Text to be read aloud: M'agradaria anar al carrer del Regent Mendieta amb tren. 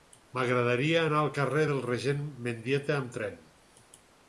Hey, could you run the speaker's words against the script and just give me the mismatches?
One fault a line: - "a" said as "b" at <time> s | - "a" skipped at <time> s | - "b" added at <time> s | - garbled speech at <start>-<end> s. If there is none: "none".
none